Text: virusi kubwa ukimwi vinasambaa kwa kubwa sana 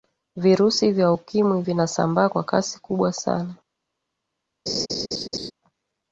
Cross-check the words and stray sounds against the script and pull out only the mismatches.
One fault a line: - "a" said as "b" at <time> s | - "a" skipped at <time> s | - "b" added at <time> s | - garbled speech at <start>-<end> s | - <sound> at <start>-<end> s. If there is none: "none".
- "kubwa" said as "vya" at 0.9 s
- "kasi" added at 2.4 s
- laugh at 4.7-5.5 s